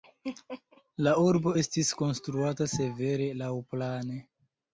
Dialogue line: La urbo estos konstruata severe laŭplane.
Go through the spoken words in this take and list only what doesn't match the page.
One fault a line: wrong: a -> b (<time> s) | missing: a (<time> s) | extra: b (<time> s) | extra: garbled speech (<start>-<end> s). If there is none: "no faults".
wrong: estos -> estis (1.6 s)